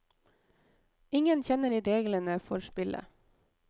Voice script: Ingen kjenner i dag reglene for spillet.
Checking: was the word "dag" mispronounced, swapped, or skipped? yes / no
yes